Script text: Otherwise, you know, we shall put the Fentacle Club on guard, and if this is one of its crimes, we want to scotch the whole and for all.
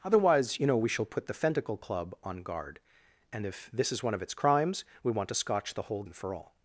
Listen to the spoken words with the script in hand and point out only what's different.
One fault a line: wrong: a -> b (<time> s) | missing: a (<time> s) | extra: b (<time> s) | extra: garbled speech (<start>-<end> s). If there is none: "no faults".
no faults